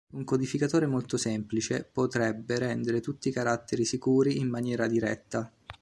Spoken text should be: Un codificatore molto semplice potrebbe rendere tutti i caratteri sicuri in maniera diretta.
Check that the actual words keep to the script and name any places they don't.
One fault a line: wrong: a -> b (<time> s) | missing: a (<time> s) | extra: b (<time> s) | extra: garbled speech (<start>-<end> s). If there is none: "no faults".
no faults